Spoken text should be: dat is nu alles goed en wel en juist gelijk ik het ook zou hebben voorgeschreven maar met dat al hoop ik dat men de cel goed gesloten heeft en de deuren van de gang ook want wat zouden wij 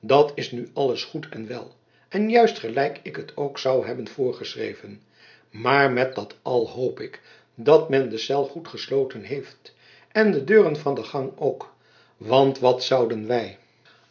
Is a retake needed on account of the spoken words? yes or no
no